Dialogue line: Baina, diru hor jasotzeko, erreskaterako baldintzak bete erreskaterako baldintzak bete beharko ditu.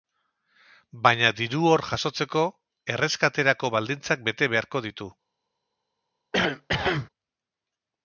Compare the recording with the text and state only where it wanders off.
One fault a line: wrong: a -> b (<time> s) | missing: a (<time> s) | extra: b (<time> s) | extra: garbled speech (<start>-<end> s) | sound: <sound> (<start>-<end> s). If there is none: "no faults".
missing: erreskaterako baldintzak bete (4.5 s)
sound: cough (6.3-7.1 s)